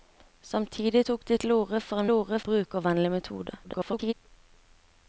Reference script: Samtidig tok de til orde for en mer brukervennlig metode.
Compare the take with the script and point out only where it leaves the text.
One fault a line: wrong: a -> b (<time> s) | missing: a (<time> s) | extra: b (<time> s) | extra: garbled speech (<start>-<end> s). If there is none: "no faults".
wrong: mer -> orde (2.1 s)
extra: garbled speech (3.6-4.1 s)